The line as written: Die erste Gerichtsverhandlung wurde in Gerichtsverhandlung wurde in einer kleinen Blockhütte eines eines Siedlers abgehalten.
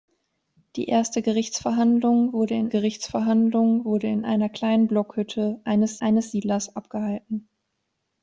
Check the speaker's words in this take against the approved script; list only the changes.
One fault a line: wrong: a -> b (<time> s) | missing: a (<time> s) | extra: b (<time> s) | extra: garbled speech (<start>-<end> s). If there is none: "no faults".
no faults